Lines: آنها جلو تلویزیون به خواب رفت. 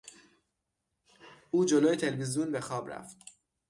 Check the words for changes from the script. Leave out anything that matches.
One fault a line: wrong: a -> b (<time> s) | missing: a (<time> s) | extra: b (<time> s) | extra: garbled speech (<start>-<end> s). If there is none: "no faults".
wrong: آنها -> او (1.5 s)